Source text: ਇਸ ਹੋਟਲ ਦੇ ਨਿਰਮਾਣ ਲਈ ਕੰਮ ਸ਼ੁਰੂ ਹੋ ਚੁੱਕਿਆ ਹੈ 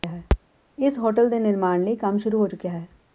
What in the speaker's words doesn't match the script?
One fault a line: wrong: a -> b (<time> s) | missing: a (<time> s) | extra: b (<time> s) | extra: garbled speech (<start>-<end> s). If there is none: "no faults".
no faults